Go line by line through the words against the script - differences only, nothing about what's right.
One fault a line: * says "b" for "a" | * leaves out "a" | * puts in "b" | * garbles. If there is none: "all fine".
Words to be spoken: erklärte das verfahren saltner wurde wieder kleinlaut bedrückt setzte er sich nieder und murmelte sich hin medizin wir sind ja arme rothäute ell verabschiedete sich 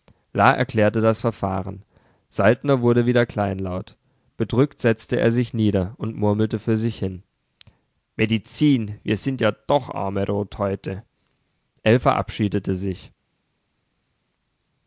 * puts in "für"
* puts in "doch"